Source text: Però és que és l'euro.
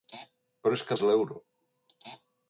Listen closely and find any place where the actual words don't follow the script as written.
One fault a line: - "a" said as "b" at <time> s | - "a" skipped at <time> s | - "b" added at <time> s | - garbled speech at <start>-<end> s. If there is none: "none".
none